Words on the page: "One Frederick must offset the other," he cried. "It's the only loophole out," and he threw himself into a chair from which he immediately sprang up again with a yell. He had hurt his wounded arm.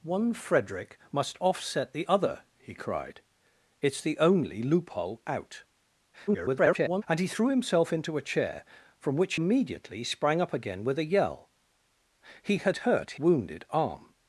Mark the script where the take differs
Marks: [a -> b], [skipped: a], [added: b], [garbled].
"One Frederick must offset the other," he cried. "It's the only loophole out," [garbled] and he threw himself into a chair from which [skipped: he] immediately sprang up again with a yell. He had hurt [skipped: his] wounded arm.